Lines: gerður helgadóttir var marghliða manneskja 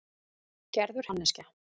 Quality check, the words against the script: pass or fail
fail